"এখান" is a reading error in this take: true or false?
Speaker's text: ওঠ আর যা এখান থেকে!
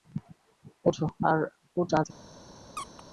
true